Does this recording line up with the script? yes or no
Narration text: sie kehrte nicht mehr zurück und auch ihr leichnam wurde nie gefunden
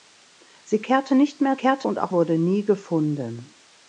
no